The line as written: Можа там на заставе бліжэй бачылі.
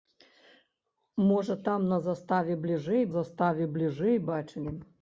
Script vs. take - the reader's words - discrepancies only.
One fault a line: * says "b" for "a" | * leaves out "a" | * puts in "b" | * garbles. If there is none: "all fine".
* puts in "заставе бліжэй"